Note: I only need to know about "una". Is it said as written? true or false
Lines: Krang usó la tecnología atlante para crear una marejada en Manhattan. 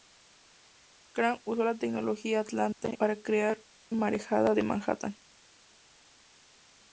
false